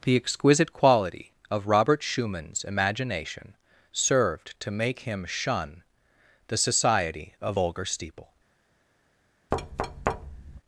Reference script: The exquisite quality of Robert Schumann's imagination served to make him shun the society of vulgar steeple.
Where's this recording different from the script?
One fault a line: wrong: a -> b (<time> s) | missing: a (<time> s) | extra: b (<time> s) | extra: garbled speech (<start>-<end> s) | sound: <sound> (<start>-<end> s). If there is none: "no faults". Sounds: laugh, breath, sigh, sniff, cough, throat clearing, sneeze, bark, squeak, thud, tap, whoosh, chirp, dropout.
sound: thud (9.5-10.6 s)